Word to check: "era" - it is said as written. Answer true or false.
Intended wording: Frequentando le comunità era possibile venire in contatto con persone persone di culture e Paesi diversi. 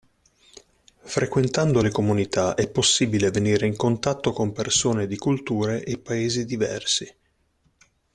false